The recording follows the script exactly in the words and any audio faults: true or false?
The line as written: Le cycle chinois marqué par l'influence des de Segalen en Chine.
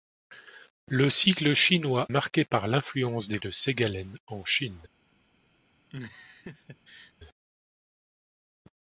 false